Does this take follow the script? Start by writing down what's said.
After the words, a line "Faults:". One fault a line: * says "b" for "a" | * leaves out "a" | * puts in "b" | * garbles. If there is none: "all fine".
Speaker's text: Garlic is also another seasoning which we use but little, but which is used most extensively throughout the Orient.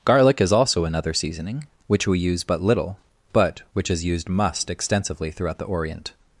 Garlic is also another seasoning which we use but little, but which is used must extensively throughout the Orient.
Faults:
* says "must" for "most"